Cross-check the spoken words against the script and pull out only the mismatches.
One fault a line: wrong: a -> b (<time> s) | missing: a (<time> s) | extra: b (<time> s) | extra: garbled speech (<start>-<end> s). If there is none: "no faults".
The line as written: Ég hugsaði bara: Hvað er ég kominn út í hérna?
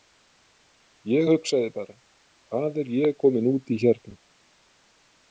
no faults